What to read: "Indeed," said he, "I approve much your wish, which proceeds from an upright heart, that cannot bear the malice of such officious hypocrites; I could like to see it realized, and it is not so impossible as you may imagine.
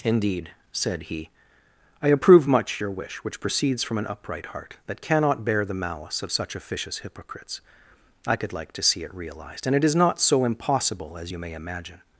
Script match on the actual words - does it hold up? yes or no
yes